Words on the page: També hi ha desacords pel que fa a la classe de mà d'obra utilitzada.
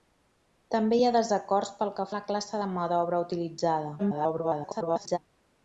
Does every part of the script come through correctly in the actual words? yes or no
no